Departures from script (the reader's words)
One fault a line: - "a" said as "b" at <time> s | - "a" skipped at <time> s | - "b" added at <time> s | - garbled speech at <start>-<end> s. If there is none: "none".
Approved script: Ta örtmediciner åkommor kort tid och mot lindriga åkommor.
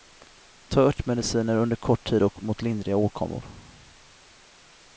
- "åkommor" said as "under" at 1.6 s